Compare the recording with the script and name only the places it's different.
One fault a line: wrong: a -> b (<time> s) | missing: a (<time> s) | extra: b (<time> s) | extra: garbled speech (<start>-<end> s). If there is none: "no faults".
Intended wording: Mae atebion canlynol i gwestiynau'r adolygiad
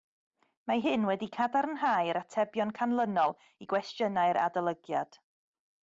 extra: hyn wedi cadarnhau'r (0.8 s)